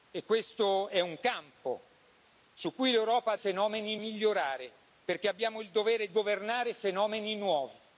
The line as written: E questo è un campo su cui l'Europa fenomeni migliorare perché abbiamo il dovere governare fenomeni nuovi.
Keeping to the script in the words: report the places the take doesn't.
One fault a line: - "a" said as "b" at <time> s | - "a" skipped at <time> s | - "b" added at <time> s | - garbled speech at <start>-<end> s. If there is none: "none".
none